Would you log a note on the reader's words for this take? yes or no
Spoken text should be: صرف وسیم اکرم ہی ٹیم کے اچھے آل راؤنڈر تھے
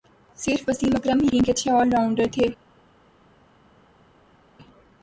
no